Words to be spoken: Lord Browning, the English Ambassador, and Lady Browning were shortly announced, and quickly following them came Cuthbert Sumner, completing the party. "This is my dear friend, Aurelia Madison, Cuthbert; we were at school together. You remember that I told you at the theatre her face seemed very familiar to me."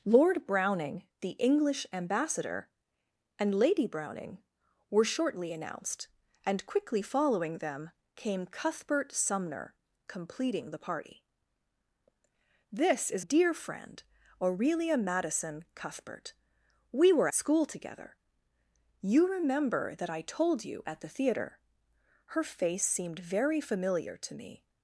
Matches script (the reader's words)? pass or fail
fail